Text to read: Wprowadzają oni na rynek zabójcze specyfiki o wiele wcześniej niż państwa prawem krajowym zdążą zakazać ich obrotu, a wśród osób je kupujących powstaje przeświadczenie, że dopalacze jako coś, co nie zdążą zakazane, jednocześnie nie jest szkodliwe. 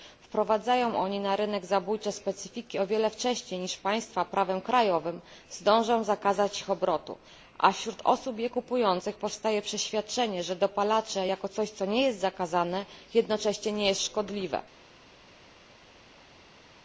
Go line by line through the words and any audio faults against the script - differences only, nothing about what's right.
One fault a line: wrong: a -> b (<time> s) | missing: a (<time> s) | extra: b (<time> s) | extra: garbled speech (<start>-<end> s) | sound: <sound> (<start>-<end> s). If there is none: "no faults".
wrong: zdążą -> jest (12.0 s)